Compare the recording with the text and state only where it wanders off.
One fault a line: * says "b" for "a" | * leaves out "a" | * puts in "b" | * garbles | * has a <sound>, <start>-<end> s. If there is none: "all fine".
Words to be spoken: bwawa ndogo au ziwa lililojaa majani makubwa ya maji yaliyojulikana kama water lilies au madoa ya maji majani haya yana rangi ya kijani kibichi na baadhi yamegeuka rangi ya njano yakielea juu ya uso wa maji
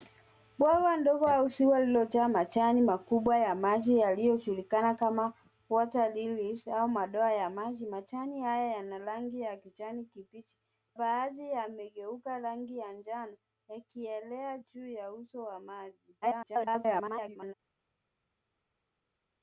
* leaves out "na"
* garbles